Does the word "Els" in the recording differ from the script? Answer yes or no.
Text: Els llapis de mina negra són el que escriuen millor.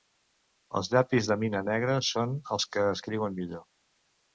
no